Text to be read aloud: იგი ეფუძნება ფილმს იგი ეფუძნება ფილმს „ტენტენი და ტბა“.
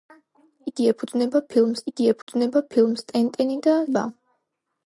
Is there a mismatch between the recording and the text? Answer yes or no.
no